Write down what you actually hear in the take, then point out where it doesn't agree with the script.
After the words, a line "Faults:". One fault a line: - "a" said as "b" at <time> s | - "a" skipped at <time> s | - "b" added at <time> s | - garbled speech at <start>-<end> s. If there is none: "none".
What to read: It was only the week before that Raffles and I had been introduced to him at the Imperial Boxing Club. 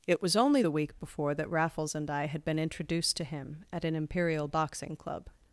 It was only the week before that Raffles and I had been introduced to him at an Imperial Boxing Club.
Faults:
- "the" said as "an" at 3.8 s